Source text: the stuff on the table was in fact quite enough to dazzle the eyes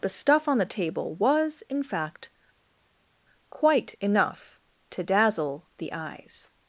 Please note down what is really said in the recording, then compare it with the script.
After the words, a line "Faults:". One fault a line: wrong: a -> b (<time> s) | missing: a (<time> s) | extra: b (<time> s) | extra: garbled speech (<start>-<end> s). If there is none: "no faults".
the stuff on the table was in fact quite enough to dazzle the eyes
Faults:
no faults